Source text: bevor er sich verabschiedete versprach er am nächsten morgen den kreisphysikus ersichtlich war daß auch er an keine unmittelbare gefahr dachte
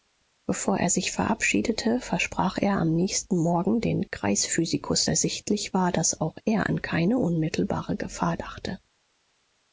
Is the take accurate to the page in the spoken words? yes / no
yes